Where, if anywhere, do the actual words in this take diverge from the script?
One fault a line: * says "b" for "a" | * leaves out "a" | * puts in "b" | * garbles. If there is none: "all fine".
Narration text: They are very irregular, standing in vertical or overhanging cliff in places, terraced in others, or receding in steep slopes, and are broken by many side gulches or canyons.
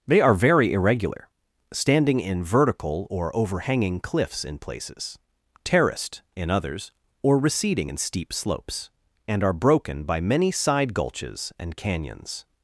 * says "cliffs" for "cliff"
* says "and" for "or"